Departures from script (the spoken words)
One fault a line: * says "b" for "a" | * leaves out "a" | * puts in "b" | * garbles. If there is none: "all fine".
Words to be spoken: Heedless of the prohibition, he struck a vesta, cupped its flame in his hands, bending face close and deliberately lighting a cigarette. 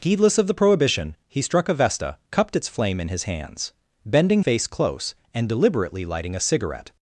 all fine